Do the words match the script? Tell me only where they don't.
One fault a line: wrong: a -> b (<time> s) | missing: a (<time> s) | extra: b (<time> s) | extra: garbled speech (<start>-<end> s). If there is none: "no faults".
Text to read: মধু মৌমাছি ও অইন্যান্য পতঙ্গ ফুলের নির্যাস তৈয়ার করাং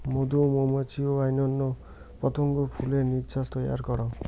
no faults